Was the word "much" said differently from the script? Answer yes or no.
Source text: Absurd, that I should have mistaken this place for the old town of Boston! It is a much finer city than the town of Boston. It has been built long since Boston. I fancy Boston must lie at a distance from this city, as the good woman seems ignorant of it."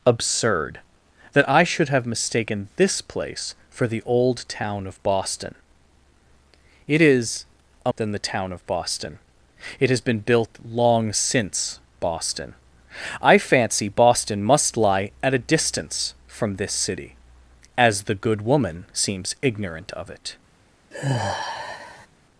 yes